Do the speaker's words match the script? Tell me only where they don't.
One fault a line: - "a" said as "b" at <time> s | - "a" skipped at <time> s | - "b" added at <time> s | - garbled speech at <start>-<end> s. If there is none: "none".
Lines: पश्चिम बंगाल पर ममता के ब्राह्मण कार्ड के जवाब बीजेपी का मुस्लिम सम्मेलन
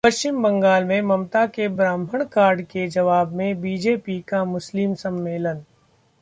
- "पर" said as "में" at 0.8 s
- "में" added at 3.4 s